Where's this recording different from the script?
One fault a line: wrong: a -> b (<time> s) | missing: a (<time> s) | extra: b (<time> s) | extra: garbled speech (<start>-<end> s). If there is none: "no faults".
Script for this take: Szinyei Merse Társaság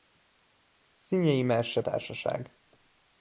no faults